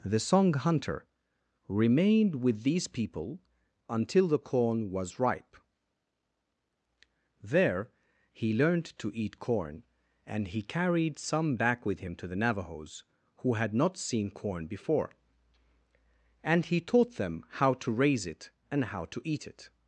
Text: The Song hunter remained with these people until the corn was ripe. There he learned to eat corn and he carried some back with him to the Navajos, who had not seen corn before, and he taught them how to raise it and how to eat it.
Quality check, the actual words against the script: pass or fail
pass